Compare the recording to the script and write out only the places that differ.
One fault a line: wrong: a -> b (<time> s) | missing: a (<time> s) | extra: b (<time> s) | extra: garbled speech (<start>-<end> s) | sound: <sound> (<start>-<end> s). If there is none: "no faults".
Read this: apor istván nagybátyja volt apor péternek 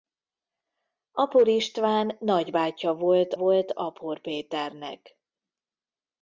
extra: volt (3.3 s)